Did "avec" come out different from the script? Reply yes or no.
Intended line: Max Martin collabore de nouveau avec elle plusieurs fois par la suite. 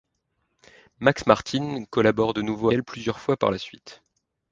yes